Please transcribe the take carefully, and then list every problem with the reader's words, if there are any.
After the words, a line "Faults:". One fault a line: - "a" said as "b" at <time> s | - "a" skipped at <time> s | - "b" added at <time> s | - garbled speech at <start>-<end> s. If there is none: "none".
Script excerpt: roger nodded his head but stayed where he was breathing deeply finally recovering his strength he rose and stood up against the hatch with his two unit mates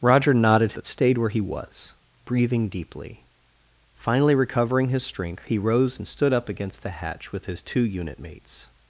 roger nodded but stayed where he was breathing deeply finally recovering his strength he rose and stood up against the hatch with his two unit mates
Faults:
- "his head" skipped at 0.7 s